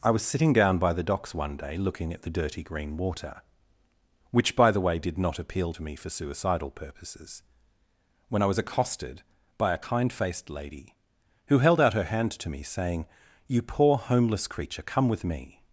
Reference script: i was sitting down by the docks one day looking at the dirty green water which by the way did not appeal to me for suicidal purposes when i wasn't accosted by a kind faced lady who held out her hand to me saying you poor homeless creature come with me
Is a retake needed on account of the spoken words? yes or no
yes